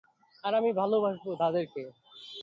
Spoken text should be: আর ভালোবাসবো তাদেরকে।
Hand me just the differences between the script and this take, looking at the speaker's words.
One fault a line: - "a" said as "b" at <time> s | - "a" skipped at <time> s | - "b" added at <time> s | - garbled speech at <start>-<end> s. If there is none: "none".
- "আমি" added at 0.6 s